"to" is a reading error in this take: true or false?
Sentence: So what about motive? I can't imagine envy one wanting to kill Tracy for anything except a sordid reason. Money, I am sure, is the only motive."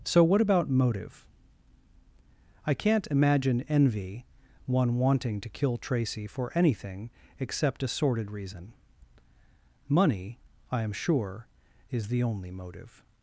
false